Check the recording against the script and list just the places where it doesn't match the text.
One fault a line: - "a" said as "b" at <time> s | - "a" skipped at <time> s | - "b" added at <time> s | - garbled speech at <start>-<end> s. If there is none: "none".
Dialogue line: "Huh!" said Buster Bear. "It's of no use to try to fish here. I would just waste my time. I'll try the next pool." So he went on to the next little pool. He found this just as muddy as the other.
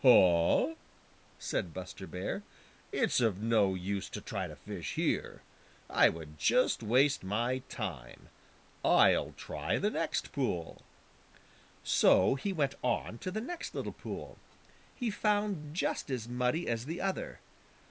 - "this" skipped at 15.7 s